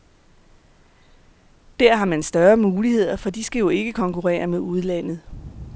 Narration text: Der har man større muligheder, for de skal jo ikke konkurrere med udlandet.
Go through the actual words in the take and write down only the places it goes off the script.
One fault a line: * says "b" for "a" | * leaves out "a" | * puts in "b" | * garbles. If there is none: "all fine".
all fine